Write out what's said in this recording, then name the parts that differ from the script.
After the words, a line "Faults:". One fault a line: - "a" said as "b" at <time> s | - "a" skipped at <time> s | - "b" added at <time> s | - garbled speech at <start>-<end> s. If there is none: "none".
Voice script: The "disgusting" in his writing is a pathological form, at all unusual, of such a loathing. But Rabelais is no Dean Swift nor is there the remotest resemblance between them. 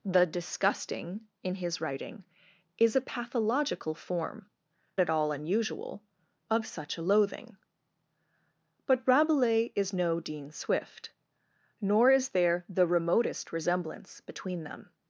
The "disgusting" in his writing is a pathological form, at all unusual, of such a loathing. But Rabelais is no Dean Swift nor is there the remotest resemblance between them.
Faults:
none